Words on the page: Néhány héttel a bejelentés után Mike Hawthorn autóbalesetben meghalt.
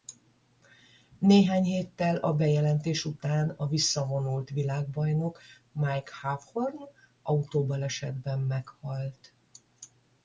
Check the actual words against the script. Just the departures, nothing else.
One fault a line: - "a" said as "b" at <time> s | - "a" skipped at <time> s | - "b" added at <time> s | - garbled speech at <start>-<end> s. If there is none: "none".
- "a visszavonult világbajnok" added at 3.5 s